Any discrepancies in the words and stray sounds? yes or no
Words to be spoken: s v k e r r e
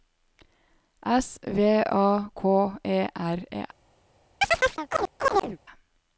yes